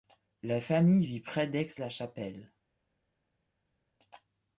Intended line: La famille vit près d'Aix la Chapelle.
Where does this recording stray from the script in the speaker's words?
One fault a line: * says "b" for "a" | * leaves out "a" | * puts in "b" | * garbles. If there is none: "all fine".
all fine